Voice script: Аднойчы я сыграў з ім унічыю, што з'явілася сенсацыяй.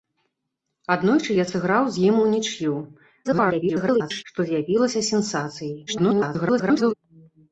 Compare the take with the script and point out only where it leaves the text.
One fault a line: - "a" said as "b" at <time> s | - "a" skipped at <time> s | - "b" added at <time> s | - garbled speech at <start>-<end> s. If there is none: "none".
- garbled speech at 3.2-4.2 s
- garbled speech at 5.9-6.9 s